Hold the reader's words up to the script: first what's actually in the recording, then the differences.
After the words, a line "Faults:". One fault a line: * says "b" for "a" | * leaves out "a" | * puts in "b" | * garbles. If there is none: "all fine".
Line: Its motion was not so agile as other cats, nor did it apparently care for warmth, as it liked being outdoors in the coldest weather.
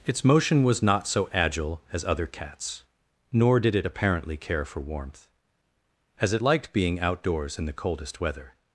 Its motion was not so agile as other cats, nor did it apparently care for warmth, as it liked being outdoors in the coldest weather.
Faults:
all fine